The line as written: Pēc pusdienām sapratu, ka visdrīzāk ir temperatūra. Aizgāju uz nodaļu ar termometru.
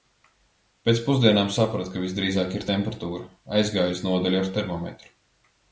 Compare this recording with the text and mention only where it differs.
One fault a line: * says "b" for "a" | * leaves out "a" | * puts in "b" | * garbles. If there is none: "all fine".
all fine